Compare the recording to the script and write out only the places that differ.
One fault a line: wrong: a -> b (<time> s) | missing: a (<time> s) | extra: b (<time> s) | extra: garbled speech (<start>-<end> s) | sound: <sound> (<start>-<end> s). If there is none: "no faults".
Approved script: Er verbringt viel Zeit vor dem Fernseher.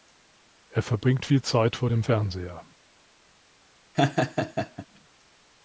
sound: laugh (3.9-4.9 s)